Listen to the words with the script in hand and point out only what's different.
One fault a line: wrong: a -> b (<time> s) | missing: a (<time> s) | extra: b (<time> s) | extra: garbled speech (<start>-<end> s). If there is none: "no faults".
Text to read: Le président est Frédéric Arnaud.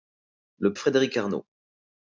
missing: président est (0.7 s)